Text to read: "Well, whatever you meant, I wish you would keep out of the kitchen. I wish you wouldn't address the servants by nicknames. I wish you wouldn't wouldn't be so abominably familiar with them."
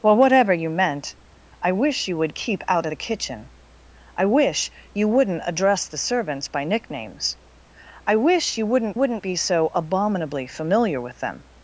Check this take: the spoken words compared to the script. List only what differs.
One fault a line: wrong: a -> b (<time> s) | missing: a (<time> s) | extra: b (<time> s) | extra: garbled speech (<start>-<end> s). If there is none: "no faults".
no faults